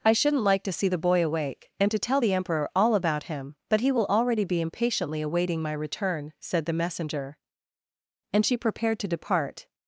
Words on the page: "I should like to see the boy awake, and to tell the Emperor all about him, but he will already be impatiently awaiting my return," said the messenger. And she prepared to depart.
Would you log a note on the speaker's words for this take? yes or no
yes